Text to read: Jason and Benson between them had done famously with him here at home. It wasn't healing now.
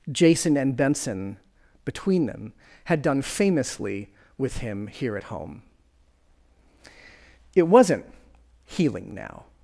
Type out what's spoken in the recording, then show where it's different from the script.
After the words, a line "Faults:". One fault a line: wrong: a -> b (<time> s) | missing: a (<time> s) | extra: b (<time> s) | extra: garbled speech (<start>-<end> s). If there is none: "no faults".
Jason and Benson between them had done famously with him here at home. It wasn't healing now.
Faults:
no faults